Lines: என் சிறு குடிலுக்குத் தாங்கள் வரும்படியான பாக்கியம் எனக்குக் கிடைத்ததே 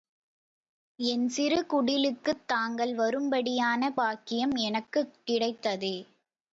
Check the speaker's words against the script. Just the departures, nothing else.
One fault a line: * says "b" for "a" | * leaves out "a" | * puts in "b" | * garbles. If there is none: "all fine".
all fine